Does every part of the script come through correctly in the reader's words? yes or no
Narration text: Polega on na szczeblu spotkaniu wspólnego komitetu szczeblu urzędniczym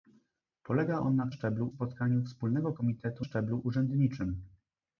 yes